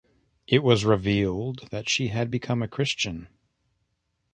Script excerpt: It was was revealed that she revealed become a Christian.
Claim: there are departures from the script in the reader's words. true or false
true